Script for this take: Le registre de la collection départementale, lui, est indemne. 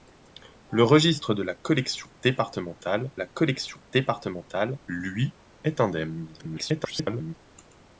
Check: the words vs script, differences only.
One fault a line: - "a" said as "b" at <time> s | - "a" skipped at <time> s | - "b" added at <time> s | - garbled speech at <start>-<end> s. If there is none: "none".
- "la collection départementale" added at 3.2 s
- garbled speech at 6.4-7.3 s